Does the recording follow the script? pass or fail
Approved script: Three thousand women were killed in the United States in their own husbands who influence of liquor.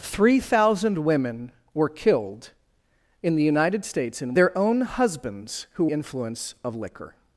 pass